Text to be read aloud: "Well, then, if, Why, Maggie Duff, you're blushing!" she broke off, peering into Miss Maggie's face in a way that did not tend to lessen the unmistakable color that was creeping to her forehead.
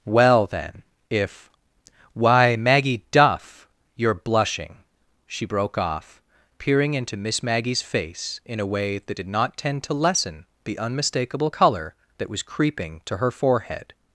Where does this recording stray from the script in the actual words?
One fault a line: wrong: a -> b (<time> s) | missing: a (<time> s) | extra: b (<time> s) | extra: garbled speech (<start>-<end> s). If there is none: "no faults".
no faults